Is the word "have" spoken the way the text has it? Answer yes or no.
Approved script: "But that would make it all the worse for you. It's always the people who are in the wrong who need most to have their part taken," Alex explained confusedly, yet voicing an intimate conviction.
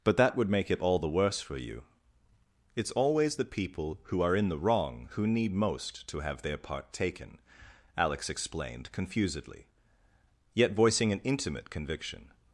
yes